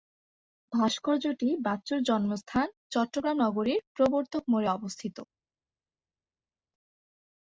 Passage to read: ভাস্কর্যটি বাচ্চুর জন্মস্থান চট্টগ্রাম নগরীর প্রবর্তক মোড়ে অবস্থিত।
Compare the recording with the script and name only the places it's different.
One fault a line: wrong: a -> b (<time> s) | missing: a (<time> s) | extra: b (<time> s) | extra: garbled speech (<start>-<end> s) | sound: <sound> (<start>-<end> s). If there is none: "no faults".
no faults